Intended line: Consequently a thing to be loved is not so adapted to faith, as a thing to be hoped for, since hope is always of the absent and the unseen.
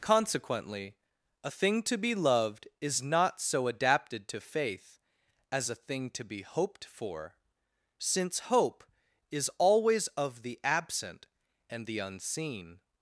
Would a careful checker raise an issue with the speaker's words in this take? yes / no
no